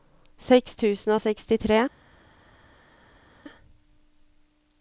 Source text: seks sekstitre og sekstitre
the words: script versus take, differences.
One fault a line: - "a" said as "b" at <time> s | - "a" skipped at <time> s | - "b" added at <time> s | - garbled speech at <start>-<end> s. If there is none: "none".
- "sekstitre" said as "tusen" at 0.8 s